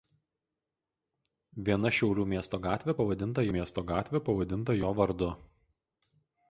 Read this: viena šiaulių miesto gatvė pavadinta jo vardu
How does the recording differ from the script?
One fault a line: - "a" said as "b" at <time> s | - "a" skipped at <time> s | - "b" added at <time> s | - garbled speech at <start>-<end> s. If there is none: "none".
- "miesto gatvė pavadinta" added at 3.6 s